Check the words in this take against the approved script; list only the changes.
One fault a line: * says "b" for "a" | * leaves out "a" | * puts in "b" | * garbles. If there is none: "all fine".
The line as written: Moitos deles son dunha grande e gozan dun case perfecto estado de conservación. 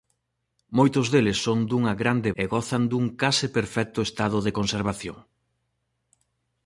all fine